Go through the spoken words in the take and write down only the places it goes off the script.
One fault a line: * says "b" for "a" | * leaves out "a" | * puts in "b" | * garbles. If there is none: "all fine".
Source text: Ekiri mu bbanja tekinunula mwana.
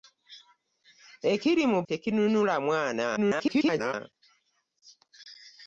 * leaves out "bbanja"
* garbles